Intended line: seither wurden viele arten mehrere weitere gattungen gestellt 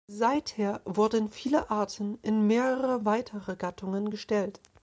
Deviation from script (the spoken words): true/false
true